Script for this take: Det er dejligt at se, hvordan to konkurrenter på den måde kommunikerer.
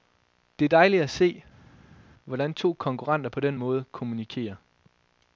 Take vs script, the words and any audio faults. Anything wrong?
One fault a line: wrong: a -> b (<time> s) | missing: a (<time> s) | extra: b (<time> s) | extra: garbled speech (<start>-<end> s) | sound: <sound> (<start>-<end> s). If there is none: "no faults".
no faults